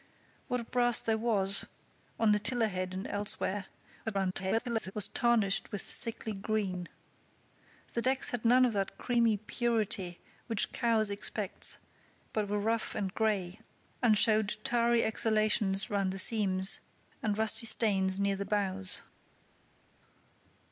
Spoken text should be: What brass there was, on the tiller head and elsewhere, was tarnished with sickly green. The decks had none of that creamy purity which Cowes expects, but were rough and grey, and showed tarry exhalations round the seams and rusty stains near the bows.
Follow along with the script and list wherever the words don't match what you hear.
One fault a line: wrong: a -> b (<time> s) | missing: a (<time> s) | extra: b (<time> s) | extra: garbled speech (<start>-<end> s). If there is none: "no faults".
extra: garbled speech (4.0-4.9 s)